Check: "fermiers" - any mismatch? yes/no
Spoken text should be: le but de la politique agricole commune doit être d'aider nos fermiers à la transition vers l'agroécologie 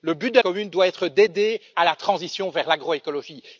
yes